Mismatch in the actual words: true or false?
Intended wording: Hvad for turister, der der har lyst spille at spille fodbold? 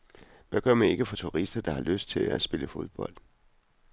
true